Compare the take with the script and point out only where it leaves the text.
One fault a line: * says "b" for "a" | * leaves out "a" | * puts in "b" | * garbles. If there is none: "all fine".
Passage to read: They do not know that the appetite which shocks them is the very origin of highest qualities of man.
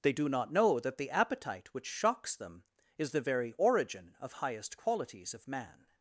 all fine